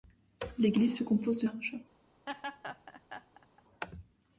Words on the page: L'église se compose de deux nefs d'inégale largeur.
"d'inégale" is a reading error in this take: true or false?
true